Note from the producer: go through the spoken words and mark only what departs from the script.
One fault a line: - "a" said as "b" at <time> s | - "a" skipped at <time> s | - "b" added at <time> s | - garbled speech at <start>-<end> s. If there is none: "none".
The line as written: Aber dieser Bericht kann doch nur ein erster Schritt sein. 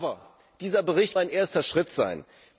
- "kann doch nur" skipped at 1.1 s